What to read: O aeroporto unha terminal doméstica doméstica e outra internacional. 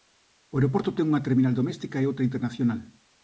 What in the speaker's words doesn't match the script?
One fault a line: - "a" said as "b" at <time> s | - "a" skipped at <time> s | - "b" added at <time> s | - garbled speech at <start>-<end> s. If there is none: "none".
- "ten" added at 0.9 s
- "doméstica" skipped at 2.0 s